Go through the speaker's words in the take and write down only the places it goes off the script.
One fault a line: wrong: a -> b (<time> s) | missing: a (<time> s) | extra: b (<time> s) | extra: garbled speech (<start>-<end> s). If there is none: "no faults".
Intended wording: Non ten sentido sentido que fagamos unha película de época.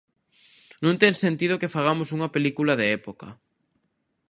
missing: sentido (1.6 s)